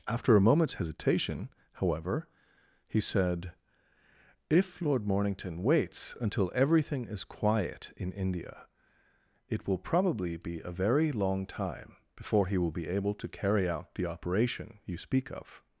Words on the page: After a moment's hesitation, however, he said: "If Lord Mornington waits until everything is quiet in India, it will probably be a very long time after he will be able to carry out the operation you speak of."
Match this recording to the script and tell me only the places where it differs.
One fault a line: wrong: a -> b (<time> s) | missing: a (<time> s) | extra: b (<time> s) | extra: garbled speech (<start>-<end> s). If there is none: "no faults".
wrong: after -> before (12.2 s)